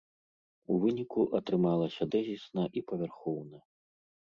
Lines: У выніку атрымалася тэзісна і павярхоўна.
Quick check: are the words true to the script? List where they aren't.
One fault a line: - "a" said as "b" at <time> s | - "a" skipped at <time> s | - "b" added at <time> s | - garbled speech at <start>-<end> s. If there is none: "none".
none